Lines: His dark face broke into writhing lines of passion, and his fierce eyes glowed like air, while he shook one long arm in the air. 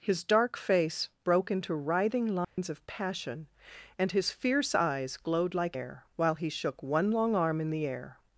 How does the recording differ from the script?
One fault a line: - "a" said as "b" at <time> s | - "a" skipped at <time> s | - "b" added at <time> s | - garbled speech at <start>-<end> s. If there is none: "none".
none